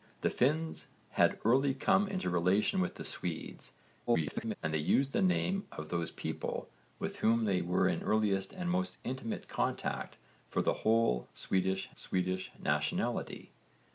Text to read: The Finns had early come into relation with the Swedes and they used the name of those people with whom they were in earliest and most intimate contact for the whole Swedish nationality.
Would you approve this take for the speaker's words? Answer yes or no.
no